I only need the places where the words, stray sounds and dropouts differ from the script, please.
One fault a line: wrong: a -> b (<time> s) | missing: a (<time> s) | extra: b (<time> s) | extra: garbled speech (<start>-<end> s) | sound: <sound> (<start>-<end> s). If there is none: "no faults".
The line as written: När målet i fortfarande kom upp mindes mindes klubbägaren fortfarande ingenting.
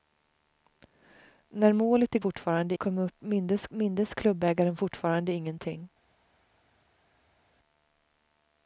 no faults